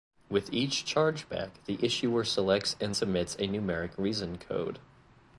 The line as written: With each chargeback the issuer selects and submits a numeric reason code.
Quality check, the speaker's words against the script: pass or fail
pass